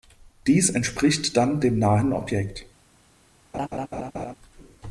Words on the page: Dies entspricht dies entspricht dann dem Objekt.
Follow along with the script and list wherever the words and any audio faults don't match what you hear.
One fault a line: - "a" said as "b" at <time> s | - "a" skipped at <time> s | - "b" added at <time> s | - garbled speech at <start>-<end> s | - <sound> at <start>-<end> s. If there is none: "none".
- "dies entspricht" skipped at 1.4 s
- "nahen" added at 1.8 s
- laugh at 3.5-4.4 s